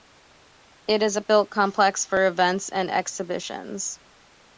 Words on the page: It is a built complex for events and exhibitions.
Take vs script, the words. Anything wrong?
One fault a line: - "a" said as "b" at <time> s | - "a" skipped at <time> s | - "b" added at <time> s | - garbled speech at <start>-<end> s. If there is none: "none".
none